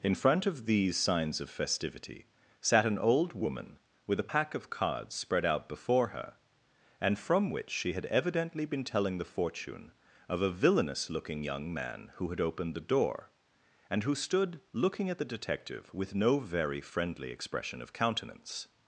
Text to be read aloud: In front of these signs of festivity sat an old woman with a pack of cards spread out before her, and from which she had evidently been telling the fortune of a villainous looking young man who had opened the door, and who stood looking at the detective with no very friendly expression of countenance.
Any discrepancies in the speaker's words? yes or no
no